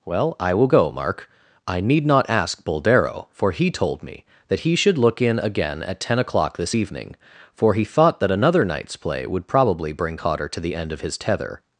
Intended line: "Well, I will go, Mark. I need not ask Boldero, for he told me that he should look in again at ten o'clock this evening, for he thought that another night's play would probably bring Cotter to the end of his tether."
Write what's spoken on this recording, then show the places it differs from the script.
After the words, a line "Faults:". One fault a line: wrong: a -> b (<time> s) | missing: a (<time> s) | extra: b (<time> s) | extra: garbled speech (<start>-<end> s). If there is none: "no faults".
"Well, I will go, Mark. I need not ask Boldero, for he told me that he should look in again at ten o'clock this evening, for he thought that another night's play would probably bring Cotter to the end of his tether."
Faults:
no faults